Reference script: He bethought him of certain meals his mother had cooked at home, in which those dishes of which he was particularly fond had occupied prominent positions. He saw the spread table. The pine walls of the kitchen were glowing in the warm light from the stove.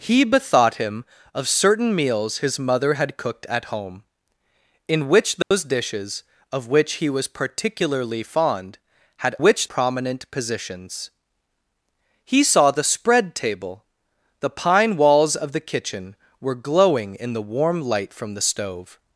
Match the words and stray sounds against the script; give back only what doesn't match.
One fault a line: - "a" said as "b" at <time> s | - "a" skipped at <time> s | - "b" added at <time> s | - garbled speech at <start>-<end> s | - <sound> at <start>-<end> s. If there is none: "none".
- dropout at 5.4-5.5 s
- "occupied" said as "which" at 9.4 s